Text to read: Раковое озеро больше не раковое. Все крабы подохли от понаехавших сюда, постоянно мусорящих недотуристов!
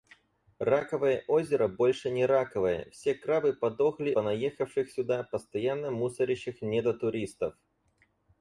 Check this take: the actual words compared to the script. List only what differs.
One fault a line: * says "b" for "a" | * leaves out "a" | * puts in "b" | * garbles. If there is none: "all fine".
* leaves out "от"